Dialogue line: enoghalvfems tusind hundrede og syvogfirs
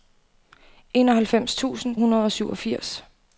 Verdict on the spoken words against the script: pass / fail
pass